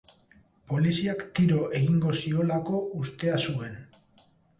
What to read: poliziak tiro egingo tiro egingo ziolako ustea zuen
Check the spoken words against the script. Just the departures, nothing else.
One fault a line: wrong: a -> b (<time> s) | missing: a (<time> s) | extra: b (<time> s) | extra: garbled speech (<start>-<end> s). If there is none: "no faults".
missing: tiro egingo (2.1 s)